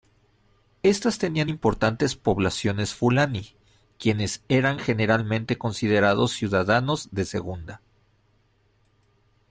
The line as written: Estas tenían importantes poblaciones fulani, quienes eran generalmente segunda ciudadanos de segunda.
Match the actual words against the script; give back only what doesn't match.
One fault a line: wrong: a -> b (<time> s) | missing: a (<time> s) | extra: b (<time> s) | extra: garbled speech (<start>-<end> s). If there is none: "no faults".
wrong: segunda -> considerados (5.6 s)